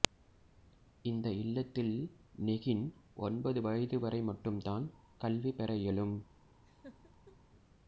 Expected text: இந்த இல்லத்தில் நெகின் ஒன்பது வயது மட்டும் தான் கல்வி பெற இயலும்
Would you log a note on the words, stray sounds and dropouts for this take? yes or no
yes